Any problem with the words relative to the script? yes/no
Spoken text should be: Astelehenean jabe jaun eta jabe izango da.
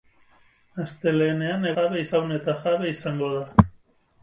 no